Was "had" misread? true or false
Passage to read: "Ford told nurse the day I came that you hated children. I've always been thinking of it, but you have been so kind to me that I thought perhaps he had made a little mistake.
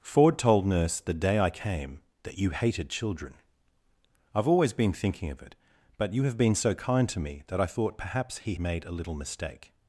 true